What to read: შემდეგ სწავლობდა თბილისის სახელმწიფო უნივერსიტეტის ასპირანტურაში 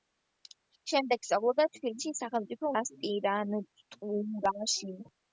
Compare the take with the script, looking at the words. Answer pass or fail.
fail